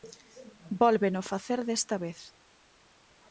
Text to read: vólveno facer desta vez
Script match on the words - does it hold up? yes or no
yes